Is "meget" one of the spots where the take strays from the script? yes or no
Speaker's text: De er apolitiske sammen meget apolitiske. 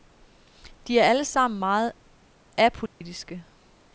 no